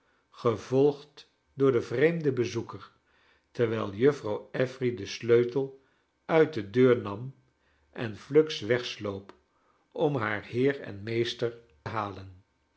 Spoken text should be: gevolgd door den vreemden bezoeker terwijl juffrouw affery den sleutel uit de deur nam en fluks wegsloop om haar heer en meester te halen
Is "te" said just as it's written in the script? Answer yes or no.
no